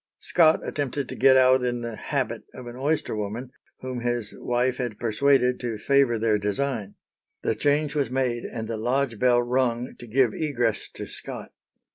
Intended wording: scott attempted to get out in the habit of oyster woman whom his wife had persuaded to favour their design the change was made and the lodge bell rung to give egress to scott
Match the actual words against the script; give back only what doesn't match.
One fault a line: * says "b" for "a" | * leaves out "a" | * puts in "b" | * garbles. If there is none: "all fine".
* puts in "an"